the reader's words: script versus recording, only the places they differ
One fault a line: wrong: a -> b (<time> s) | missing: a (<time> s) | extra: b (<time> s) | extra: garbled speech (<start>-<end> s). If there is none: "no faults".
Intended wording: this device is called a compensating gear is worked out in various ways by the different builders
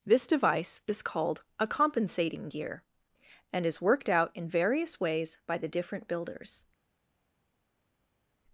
extra: and (3.5 s)